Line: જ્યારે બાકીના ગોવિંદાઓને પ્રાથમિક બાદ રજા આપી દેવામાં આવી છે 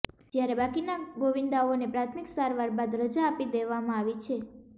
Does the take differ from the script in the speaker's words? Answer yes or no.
yes